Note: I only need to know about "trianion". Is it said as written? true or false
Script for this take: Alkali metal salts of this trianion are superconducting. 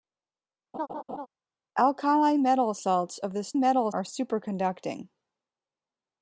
false